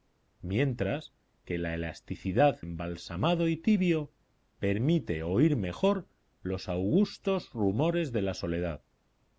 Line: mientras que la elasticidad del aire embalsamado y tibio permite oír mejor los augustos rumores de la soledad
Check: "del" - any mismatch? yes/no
yes